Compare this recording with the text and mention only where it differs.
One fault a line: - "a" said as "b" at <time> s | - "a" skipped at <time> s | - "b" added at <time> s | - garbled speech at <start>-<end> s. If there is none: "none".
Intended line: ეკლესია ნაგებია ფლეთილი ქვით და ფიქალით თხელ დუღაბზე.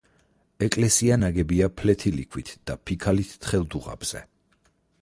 none